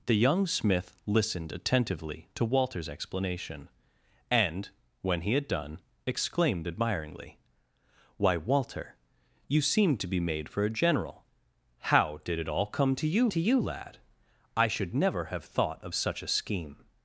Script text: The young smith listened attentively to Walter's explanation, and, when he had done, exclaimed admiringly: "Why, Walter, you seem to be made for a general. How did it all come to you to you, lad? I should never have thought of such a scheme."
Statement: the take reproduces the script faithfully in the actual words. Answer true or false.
true